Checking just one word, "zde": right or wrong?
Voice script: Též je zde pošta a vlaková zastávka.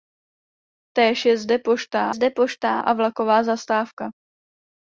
right